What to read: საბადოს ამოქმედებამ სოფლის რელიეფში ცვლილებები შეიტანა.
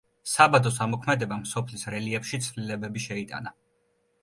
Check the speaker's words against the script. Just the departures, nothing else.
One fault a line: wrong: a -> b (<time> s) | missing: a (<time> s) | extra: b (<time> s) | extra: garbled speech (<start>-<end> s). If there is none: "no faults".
no faults